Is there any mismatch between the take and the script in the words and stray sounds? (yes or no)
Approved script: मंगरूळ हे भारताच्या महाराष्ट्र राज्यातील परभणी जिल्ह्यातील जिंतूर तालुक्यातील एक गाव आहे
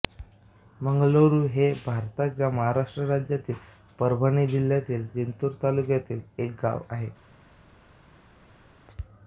no